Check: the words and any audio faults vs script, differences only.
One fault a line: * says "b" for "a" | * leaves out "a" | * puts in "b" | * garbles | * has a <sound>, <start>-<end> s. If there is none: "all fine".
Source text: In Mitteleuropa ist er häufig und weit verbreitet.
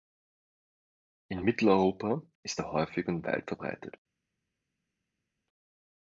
all fine